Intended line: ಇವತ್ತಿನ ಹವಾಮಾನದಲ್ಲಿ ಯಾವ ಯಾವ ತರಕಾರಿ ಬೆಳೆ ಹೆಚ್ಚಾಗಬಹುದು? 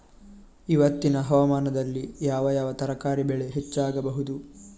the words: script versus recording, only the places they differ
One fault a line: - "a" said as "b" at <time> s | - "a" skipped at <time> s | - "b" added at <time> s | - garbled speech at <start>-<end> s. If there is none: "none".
none